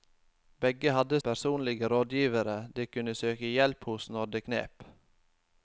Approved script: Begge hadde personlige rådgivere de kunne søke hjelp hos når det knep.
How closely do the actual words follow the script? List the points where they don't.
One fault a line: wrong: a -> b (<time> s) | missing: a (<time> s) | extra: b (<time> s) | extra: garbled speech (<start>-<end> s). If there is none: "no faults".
no faults